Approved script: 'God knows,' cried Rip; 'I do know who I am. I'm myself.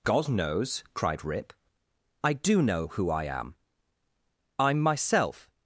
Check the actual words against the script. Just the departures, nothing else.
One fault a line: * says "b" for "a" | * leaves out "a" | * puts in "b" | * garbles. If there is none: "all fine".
all fine